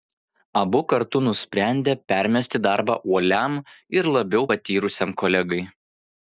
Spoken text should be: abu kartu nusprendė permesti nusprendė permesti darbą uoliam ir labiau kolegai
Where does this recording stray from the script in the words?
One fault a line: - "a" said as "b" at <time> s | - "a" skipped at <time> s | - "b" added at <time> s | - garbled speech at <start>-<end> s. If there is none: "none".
- "nusprendė permesti" skipped at 2.6 s
- "patyrusiam" added at 4.5 s